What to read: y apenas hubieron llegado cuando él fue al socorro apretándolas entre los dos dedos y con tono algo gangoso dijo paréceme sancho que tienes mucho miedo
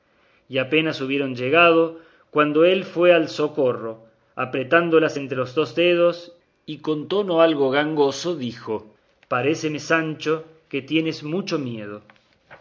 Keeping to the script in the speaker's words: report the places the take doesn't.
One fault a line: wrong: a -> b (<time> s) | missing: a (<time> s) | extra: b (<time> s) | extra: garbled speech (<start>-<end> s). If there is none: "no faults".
no faults